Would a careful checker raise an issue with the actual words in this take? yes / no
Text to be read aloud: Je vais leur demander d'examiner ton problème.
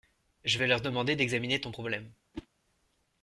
no